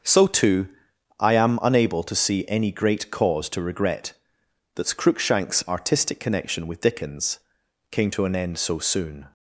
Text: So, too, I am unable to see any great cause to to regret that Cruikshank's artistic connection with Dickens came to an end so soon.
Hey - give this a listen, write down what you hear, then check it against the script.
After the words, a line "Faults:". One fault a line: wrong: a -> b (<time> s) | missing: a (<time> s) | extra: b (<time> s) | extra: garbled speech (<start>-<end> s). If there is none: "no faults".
So, too, I am unable to see any great cause to regret that Cruikshank's artistic connection with Dickens came to an end so soon.
Faults:
missing: to (3.6 s)